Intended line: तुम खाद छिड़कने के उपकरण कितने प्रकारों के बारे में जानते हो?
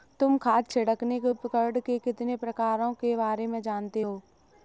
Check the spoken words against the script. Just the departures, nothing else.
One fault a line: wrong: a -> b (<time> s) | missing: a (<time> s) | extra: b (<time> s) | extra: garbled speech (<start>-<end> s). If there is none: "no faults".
extra: के (1.8 s)